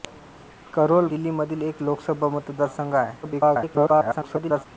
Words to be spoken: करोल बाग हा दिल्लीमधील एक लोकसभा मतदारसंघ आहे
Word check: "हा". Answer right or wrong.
wrong